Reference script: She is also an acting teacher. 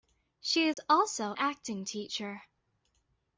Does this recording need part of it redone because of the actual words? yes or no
yes